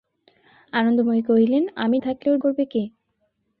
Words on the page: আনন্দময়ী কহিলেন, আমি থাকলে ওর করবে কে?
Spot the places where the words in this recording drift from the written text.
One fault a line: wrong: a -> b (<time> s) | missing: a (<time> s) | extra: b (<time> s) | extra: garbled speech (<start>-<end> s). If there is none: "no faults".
no faults